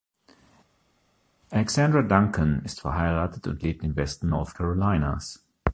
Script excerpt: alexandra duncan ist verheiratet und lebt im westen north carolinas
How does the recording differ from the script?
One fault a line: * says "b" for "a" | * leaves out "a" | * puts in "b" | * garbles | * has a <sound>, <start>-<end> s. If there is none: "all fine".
all fine